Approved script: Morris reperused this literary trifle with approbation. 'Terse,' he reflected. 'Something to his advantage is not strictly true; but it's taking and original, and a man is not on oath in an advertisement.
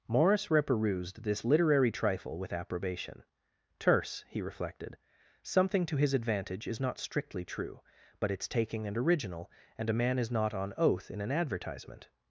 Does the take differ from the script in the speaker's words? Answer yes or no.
no